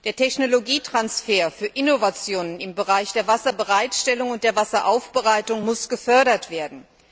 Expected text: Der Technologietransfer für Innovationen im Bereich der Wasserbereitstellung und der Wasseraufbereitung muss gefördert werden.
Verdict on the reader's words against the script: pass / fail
pass